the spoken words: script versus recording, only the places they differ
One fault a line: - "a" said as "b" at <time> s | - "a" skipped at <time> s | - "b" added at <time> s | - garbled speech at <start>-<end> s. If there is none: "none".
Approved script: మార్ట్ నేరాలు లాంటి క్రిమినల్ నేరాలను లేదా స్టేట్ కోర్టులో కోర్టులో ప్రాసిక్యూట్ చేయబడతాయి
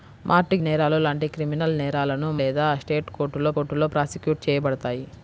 none